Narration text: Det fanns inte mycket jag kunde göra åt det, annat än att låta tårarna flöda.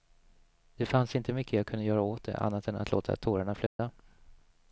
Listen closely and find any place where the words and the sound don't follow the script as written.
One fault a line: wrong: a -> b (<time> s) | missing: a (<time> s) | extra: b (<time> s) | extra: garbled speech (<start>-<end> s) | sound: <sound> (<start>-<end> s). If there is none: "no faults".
sound: dropout (3.7-3.8 s)